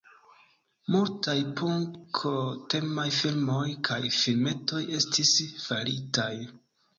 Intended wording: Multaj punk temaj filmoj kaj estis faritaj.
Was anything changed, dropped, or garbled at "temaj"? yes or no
no